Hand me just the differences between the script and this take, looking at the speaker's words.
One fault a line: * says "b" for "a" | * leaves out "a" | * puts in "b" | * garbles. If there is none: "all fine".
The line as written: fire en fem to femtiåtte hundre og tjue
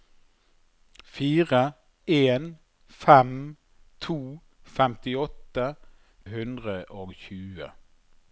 all fine